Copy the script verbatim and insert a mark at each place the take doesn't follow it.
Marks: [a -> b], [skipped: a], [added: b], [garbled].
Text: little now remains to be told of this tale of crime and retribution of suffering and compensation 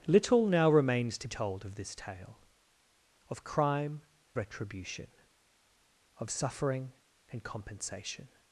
little now remains to [skipped: be] told of this tale of crime [skipped: and] retribution of suffering and compensation